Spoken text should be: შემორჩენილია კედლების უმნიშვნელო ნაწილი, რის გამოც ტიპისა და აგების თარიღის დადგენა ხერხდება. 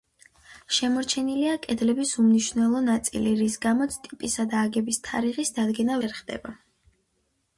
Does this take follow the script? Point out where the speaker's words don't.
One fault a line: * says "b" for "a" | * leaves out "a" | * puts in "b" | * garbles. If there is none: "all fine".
all fine